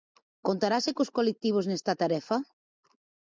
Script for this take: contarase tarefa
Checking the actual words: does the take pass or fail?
fail